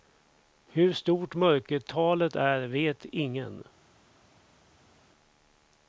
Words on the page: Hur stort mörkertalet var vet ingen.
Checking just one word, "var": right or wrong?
wrong